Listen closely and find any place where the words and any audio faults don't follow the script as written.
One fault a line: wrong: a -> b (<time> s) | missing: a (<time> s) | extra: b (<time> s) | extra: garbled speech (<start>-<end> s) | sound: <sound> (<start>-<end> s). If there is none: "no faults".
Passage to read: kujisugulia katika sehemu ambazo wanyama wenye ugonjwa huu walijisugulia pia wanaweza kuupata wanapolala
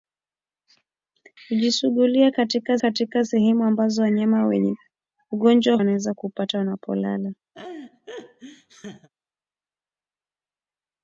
extra: katika (2.8 s)
missing: huu walijisugulia pia (5.8 s)
sound: laugh (7.5-9.1 s)